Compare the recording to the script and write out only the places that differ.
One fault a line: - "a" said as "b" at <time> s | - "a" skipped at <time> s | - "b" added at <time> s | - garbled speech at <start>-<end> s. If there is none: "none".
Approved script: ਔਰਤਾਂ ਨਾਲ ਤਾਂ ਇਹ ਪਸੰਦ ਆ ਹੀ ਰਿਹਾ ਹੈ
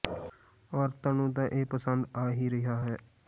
- "ਨਾਲ" said as "ਨੂੰ" at 1.1 s